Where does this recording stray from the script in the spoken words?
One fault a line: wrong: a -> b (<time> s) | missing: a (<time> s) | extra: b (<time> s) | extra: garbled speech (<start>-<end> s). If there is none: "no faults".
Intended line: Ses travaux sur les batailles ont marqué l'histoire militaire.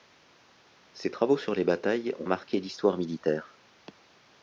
no faults